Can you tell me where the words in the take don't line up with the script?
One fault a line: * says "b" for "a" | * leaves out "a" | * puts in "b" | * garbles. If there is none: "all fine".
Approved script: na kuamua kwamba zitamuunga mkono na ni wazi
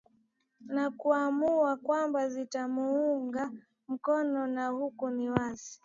* puts in "huku"